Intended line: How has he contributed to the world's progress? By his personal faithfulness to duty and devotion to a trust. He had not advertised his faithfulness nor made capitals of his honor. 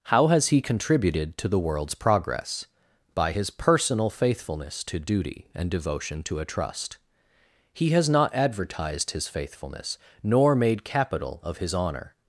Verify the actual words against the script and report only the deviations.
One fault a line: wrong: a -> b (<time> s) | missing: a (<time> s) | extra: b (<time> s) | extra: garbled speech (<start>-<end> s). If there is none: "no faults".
wrong: had -> has (7.9 s)
wrong: capitals -> capital (10.8 s)